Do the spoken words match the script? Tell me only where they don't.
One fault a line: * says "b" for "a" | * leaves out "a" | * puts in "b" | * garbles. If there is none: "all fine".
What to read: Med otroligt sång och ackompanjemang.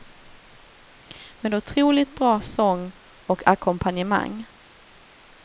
* puts in "bra"